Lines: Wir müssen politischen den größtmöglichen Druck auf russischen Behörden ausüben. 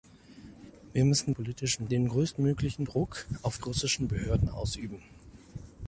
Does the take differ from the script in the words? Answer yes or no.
no